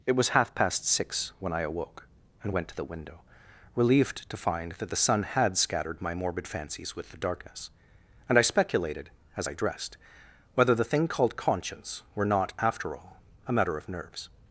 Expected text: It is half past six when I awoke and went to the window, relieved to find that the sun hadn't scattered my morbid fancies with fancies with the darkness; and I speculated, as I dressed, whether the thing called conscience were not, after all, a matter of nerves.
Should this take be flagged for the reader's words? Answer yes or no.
yes